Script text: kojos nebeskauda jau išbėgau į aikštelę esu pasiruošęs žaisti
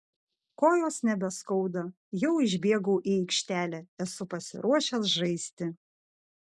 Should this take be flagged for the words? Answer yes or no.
no